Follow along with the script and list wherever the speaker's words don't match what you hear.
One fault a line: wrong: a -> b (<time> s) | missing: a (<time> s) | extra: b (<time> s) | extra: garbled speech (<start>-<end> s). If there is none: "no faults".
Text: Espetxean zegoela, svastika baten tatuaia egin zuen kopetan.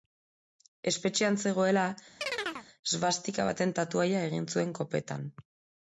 no faults